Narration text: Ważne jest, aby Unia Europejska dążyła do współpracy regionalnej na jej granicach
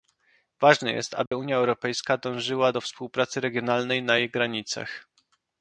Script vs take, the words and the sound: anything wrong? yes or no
yes